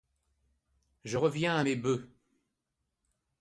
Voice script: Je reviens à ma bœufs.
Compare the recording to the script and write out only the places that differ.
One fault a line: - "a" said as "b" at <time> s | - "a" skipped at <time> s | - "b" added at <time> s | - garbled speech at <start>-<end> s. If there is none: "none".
- "ma" said as "mes" at 1.6 s